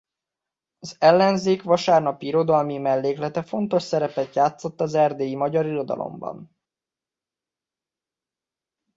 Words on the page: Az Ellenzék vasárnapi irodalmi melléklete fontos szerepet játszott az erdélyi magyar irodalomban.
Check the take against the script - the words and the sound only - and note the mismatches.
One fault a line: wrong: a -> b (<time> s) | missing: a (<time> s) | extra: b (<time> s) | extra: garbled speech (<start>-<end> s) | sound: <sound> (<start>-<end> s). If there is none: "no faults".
no faults